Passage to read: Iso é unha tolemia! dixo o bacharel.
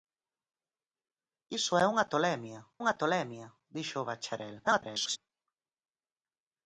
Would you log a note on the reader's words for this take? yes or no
yes